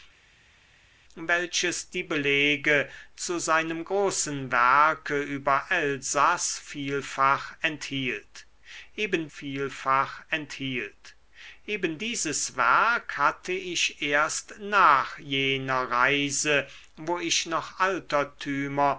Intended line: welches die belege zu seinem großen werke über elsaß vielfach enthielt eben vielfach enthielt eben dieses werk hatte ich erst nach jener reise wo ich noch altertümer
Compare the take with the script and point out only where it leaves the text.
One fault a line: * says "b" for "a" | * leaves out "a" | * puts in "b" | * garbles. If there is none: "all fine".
all fine